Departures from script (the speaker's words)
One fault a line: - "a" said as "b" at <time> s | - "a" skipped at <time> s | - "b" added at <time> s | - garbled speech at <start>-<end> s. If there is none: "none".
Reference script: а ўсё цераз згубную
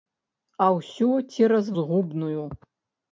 none